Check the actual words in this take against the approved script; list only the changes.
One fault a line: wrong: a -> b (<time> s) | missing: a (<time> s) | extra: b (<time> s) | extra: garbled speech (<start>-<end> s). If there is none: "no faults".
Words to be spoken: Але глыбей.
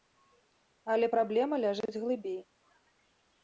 extra: праблема ляжыць (1.2 s)